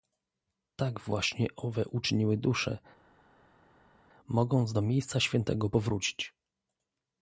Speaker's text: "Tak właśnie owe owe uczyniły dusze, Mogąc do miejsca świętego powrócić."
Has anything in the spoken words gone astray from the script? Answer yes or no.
yes